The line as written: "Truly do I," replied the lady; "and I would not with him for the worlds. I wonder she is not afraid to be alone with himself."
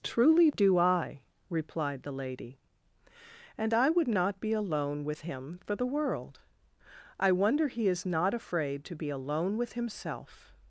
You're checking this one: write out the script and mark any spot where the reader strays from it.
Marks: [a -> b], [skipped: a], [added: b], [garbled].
"Truly do I," replied the lady; "and I would not [added: be alone] with him for the [worlds. -> world] I wonder [she -> he] is not afraid to be alone with himself."